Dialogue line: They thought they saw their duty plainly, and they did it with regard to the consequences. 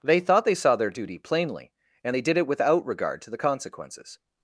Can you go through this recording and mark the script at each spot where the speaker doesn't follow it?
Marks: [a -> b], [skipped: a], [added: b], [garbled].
They thought they saw their duty plainly, and they did it [with -> without] regard to the consequences.